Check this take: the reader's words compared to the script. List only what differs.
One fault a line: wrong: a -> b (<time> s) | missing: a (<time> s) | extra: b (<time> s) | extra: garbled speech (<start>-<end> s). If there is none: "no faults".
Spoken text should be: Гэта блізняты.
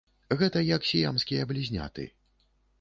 extra: як сіямскія (0.7 s)